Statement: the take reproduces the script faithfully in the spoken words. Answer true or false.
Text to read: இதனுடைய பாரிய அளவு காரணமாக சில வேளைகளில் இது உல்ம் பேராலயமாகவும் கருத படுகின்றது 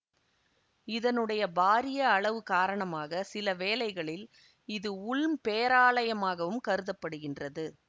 true